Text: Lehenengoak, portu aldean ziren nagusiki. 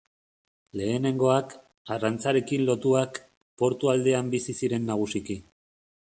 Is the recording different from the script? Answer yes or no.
yes